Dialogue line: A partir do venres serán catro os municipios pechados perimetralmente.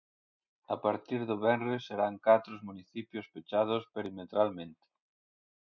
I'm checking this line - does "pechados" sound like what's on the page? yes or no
yes